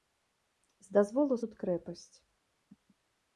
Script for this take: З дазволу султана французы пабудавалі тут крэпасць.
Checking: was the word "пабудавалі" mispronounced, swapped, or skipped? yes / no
yes